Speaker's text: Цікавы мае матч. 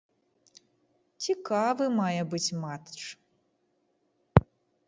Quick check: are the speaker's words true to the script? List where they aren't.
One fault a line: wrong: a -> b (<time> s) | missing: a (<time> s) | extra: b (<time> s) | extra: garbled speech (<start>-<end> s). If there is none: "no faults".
extra: быць (2.3 s)